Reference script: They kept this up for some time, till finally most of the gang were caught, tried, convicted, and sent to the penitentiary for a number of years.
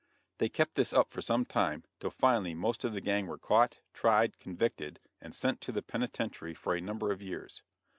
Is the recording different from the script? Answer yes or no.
no